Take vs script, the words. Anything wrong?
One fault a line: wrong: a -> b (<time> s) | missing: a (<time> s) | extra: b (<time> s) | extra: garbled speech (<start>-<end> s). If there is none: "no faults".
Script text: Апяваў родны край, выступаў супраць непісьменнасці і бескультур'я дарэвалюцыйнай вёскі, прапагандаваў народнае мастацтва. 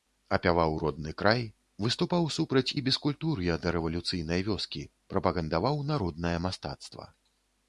missing: непісьменнасці (2.8 s)